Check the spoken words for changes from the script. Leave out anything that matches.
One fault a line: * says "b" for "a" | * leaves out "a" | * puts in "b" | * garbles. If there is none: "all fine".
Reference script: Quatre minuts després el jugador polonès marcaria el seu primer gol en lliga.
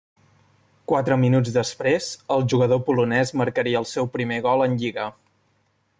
all fine